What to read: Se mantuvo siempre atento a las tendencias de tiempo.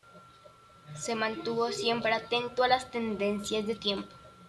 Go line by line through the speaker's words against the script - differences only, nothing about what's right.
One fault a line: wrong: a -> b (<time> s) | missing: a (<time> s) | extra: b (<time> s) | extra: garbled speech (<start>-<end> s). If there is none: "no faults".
no faults